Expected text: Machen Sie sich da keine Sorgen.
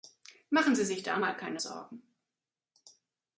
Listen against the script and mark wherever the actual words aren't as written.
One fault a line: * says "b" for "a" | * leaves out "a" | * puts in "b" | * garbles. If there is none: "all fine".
* puts in "mal"